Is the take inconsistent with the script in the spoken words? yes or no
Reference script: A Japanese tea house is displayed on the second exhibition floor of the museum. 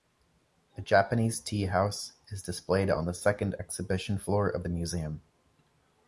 no